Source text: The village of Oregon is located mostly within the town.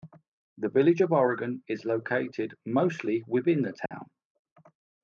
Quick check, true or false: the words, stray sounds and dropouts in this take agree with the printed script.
false